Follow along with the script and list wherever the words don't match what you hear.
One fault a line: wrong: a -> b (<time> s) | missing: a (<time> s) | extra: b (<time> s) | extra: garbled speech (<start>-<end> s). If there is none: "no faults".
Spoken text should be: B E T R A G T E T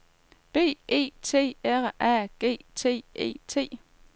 no faults